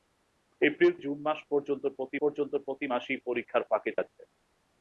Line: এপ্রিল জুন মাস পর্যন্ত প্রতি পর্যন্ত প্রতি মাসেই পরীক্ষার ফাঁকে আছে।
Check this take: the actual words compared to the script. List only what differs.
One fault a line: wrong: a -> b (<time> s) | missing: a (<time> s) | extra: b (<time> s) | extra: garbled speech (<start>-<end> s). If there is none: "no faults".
no faults